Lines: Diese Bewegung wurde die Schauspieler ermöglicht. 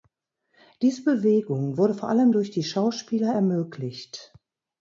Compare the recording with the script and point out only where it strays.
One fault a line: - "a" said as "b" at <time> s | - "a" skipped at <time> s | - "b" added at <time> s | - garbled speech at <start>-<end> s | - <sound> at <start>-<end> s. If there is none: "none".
- "vor allem durch" added at 1.9 s